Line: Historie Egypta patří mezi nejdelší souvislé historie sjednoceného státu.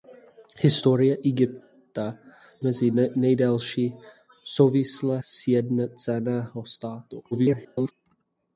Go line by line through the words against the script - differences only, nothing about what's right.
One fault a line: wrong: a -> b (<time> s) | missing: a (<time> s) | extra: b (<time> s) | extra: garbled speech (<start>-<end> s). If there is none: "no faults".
missing: patří (2.2 s)
missing: historie (5.2 s)
extra: garbled speech (7.3-7.9 s)